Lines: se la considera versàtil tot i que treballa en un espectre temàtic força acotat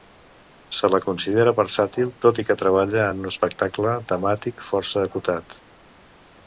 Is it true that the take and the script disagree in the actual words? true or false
false